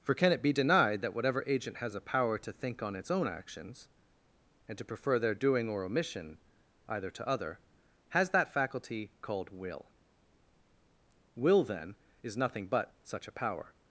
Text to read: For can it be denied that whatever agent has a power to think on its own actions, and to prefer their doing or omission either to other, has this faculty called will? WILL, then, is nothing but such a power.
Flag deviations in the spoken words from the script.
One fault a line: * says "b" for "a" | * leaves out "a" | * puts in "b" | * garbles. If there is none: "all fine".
* says "that" for "this"